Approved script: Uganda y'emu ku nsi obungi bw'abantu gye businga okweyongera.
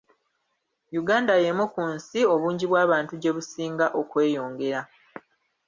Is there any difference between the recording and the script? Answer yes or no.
no